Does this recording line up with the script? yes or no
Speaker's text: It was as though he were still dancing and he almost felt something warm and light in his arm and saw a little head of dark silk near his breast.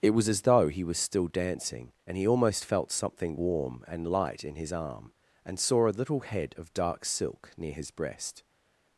no